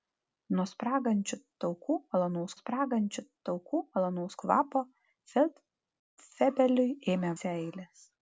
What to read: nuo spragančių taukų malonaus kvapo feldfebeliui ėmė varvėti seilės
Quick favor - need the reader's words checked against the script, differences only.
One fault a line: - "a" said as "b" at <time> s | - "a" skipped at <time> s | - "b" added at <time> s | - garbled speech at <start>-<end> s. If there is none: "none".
- "spragančių taukų malonaus" added at 2.6 s
- "varvėti" skipped at 7.3 s